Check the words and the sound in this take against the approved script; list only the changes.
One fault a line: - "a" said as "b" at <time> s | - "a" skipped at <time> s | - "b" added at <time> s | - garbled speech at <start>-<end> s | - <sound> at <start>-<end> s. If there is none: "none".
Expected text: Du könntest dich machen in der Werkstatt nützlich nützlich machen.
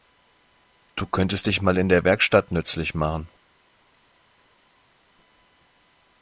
- "machen" said as "mal" at 1.6 s
- "nützlich" skipped at 3.0 s